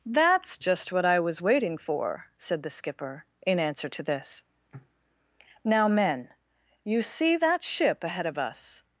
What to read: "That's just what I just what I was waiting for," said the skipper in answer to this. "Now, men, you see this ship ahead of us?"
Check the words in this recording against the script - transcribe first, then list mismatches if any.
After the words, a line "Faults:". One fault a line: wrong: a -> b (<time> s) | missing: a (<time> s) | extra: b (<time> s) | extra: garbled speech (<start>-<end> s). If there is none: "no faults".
"That's just what I was waiting for," said the skipper in answer to this. "Now, men, you see that ship ahead of us?"
Faults:
missing: just what I (1.2 s)
wrong: this -> that (7.4 s)